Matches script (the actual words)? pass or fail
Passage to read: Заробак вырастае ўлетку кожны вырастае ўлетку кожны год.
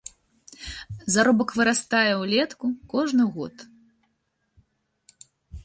fail